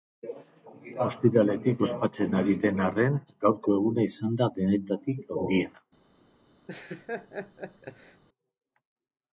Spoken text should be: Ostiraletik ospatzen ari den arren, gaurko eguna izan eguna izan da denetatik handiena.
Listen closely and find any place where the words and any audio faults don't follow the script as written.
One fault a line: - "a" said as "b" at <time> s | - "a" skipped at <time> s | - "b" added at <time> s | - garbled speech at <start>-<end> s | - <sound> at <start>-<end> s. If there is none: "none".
- "eguna izan" skipped at 4.4 s
- laugh at 6.7-8.2 s